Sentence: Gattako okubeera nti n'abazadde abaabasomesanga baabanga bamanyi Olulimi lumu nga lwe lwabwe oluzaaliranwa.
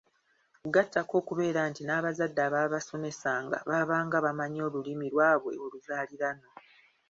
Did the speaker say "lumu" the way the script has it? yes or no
no